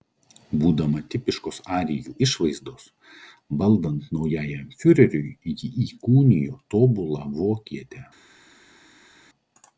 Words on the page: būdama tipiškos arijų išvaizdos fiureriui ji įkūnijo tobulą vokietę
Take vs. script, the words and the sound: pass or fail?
fail